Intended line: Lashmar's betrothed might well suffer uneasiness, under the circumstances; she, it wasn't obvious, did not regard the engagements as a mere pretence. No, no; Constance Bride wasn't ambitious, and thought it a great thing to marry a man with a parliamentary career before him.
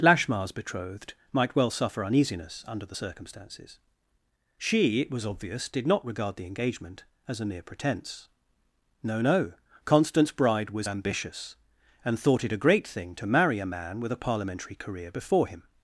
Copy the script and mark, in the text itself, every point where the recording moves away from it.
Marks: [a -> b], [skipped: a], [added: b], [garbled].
Lashmar's betrothed might well suffer uneasiness, under the circumstances; she, it [wasn't -> was] obvious, did not regard the [engagements -> engagement] as a mere pretence. No, no; Constance Bride [wasn't -> was] ambitious, and thought it a great thing to marry a man with a parliamentary career before him.